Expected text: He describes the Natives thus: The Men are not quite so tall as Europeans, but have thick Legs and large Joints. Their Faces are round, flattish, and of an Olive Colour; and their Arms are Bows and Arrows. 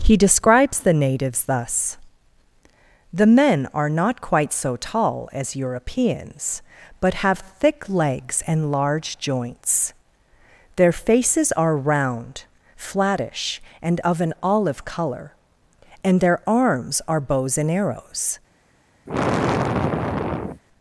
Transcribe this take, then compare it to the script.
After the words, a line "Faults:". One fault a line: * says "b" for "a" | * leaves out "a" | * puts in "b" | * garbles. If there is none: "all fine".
He describes the Natives thus: The Men are not quite so tall as Europeans, but have thick Legs and large Joints. Their Faces are round, flattish, and of an Olive Colour; and their Arms are Bows and Arrows.
Faults:
all fine